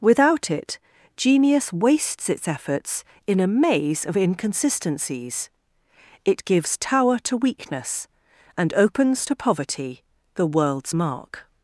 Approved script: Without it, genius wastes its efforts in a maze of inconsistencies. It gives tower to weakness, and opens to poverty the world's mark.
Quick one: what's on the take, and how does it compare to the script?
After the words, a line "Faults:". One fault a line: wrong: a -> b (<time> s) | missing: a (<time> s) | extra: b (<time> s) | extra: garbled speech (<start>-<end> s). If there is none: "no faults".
Without it, genius wastes its efforts in a maze of inconsistencies. It gives tower to weakness, and opens to poverty the world's mark.
Faults:
no faults